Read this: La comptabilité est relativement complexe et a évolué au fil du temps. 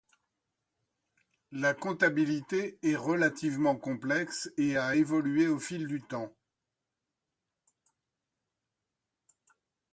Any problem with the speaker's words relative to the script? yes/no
no